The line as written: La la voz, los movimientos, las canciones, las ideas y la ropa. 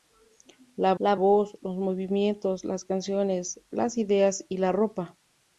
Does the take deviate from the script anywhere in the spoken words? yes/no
no